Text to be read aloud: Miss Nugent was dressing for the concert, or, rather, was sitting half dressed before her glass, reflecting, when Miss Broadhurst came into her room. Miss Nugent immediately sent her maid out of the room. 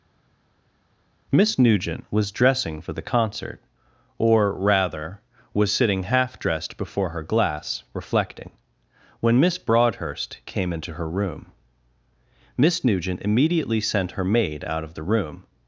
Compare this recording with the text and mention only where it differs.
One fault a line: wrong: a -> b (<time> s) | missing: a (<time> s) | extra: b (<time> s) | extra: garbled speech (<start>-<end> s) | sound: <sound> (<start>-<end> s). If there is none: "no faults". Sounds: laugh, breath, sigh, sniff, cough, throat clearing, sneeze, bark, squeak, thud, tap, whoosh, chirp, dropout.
no faults